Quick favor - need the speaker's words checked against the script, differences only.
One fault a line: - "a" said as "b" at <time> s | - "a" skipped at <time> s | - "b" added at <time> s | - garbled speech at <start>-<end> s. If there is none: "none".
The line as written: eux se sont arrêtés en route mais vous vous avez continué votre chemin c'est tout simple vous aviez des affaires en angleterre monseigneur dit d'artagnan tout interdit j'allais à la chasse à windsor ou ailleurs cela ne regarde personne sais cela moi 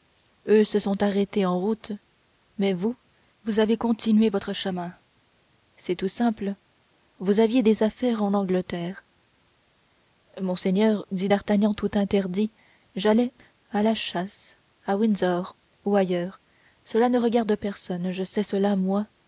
- "je" added at 18.1 s